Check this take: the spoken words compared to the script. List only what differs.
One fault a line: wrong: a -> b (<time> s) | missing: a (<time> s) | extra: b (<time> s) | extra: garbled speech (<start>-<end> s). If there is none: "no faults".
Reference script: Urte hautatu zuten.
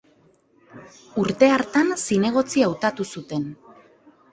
extra: hartan zinegotzi (1.6 s)